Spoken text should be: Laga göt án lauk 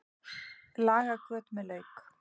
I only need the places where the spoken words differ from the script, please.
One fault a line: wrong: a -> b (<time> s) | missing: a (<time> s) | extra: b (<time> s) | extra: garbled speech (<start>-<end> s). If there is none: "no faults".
wrong: án -> með (1.6 s)